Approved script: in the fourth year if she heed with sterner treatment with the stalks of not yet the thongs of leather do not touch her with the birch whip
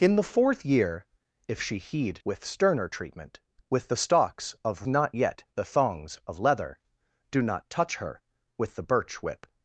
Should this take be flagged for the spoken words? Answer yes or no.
no